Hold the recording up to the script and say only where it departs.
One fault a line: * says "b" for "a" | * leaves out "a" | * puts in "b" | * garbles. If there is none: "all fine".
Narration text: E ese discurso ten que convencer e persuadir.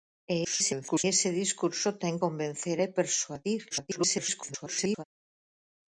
* garbles
* leaves out "que"
* garbles